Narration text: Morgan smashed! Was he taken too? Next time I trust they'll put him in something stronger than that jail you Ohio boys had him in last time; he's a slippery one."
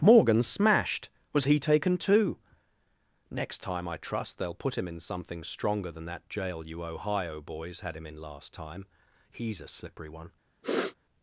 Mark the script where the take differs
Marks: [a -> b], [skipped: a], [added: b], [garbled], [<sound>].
Morgan smashed! Was he taken too? Next time I trust they'll put him in something stronger than that jail you Ohio boys had him in last time; he's a slippery one." [sniff]